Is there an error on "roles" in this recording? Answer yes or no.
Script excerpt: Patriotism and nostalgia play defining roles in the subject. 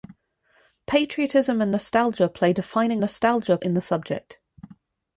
yes